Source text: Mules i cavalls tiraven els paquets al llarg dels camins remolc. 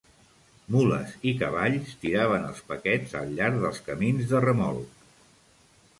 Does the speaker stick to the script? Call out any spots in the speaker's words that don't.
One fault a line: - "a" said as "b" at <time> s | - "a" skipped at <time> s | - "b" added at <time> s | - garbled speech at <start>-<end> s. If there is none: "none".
- "de" added at 4.3 s